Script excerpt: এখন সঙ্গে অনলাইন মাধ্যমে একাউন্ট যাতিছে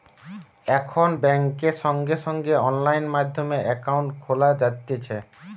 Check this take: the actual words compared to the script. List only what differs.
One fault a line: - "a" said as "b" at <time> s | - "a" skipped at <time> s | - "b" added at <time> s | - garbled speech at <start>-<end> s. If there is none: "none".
- "বেংকে" added at 1.2 s
- "সঙ্গে" added at 2.2 s
- "খোলা" added at 4.2 s